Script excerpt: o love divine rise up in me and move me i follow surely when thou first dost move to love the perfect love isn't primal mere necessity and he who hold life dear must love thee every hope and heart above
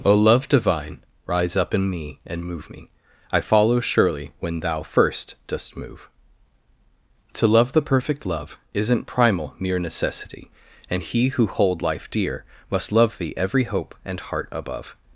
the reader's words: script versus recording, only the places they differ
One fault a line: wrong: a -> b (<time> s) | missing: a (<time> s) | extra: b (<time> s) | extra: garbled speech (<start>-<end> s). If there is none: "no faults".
no faults